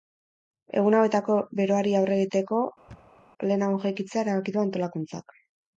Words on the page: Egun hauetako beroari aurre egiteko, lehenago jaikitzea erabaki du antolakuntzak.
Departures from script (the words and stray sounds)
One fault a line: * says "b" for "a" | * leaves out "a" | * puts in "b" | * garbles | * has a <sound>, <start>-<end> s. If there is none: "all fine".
* has a thud, 2.9-3.2 s